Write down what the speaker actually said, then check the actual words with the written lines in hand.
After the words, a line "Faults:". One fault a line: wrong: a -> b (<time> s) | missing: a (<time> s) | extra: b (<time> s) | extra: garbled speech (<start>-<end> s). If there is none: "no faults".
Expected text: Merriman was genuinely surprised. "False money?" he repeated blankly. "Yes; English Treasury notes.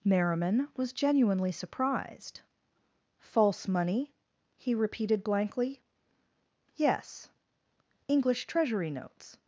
Merriman was genuinely surprised. "False money?" he repeated blankly. "Yes; English Treasury notes.
Faults:
no faults